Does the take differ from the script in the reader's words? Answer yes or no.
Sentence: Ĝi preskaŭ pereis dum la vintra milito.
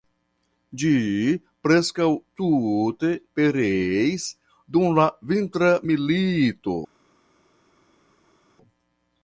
yes